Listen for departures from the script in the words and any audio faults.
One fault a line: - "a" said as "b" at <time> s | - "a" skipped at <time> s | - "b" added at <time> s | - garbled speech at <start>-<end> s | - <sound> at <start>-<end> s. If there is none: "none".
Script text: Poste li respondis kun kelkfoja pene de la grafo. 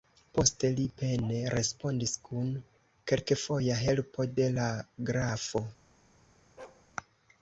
- "pene" added at 1.0 s
- "pene" said as "helpo" at 3.8 s
- bark at 6.6-6.9 s